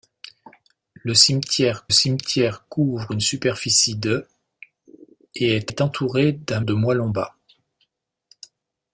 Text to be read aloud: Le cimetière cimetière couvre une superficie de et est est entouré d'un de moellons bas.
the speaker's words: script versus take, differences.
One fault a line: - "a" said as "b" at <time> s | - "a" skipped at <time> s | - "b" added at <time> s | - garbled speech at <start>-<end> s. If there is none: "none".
none